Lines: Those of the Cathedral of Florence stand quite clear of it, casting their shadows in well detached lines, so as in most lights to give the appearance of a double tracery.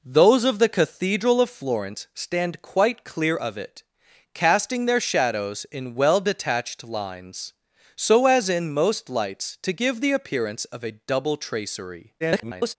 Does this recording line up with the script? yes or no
no